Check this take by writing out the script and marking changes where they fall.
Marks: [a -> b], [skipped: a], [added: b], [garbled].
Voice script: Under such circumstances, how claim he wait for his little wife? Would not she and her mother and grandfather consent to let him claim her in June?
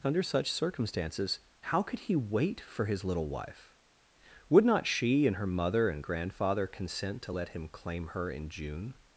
Under such circumstances, how [claim -> could] he wait for his little wife? Would not she and her mother and grandfather consent to let him claim her in June?